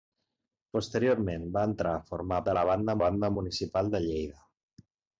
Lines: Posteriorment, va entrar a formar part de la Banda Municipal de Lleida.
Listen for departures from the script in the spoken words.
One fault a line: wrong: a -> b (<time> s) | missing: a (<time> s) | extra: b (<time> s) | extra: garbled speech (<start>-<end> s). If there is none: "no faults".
missing: part (2.4 s)
extra: Banda (3.0 s)